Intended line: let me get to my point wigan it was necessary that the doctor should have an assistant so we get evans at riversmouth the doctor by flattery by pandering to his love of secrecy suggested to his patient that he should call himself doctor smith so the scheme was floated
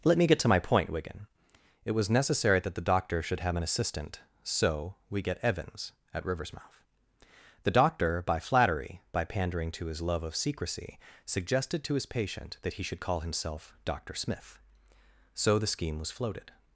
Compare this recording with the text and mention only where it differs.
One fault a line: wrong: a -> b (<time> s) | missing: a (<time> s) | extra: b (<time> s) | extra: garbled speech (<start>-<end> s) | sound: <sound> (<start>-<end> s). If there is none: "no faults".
no faults